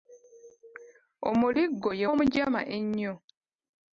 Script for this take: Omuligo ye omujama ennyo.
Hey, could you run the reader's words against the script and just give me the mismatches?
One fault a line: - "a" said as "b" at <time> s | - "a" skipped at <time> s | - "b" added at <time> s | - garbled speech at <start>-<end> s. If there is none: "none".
none